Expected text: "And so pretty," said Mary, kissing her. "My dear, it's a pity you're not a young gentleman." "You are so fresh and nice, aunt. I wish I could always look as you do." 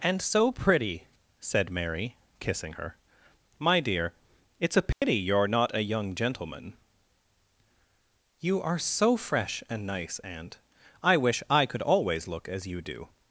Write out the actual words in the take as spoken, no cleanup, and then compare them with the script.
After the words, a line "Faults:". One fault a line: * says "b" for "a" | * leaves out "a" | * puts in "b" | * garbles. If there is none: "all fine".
"And so pretty," said Mary, kissing her. "My dear, it's a pity you're not a young gentleman." "You are so fresh and nice, aunt. I wish I could always look as you do."
Faults:
all fine